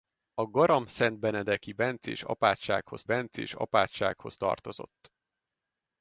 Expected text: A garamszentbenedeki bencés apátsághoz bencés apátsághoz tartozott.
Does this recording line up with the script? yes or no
yes